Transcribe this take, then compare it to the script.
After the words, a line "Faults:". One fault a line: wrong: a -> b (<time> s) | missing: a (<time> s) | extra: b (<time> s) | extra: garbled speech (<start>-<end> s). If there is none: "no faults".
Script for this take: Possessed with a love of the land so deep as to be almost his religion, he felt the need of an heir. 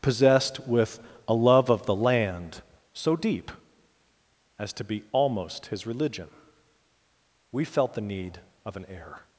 Possessed with a love of the land so deep as to be almost his religion, we felt the need of an heir.
Faults:
wrong: he -> we (7.5 s)